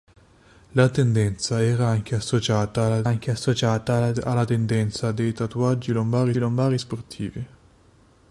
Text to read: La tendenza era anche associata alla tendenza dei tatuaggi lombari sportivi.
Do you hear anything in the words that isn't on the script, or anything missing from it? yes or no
yes